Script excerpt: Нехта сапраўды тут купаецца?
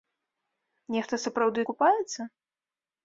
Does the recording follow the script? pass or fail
fail